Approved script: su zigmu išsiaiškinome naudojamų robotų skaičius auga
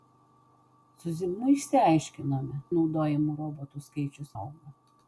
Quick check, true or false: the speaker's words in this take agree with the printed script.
true